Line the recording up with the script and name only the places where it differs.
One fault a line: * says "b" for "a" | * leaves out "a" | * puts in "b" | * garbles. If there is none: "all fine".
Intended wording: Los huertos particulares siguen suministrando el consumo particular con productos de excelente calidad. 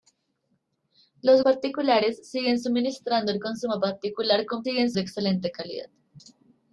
* leaves out "huertos"
* says "siguen" for "productos"